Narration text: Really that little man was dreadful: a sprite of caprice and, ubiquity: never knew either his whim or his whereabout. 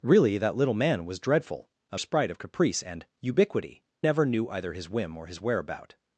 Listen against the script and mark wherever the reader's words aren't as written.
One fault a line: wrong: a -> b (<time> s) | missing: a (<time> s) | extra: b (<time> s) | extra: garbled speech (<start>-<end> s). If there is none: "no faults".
no faults